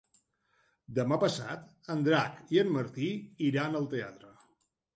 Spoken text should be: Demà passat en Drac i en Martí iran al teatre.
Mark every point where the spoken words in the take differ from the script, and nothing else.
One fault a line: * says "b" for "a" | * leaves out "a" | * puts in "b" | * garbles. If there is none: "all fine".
all fine